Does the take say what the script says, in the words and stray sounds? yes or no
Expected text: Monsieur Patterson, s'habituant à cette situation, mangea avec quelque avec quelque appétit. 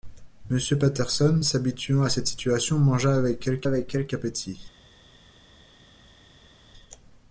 yes